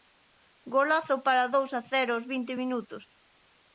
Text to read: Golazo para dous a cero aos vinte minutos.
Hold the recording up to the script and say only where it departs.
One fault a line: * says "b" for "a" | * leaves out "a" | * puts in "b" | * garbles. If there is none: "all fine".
all fine